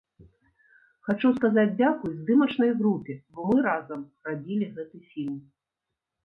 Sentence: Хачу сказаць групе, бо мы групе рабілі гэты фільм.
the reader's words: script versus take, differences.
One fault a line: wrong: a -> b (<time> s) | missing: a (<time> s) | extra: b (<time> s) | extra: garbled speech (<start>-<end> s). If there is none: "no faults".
extra: дзякуй здымачнай (1.8 s)
wrong: групе -> разам (3.7 s)